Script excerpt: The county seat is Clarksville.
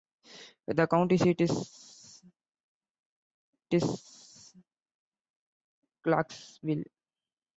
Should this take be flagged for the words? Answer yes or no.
yes